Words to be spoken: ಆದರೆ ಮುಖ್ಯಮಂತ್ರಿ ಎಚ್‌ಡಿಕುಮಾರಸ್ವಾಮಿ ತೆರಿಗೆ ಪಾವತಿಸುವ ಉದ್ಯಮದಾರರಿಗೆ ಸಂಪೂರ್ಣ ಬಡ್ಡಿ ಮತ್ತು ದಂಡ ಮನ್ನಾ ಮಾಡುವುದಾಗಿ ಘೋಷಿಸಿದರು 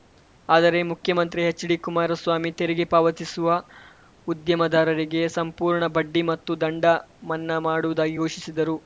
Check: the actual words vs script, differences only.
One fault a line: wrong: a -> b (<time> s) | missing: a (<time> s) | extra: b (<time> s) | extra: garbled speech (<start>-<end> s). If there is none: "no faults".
no faults